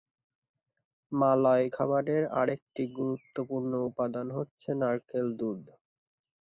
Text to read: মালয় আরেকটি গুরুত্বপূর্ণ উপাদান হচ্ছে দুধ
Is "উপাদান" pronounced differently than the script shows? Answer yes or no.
no